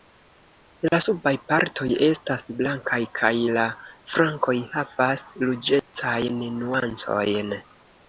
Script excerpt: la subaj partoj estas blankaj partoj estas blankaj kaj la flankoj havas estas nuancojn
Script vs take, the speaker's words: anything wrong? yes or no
yes